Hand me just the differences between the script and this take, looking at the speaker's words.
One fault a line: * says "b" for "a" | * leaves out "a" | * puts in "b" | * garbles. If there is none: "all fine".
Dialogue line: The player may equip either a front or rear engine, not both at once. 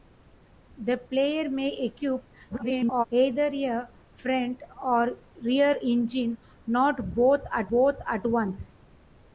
* garbles
* puts in "both at"